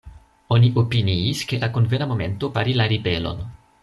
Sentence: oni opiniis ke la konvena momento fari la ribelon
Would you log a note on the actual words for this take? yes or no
no